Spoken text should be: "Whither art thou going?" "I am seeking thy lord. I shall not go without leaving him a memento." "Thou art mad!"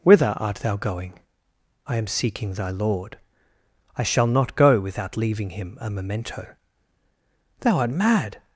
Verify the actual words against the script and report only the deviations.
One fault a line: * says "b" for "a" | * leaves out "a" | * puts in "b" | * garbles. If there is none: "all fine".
all fine